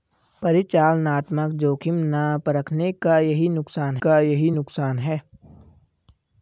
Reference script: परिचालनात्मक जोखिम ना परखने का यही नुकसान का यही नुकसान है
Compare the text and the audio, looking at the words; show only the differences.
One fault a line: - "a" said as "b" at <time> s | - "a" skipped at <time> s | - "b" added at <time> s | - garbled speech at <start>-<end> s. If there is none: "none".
none